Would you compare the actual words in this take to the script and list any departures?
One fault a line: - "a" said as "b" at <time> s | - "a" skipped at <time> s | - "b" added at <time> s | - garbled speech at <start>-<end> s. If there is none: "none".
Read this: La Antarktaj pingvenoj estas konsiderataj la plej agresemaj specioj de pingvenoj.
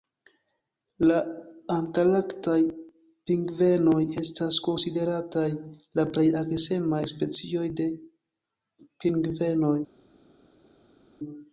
none